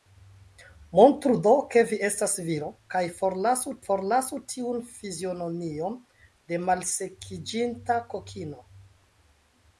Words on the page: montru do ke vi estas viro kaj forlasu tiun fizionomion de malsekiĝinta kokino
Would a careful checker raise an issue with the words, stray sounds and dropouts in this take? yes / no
yes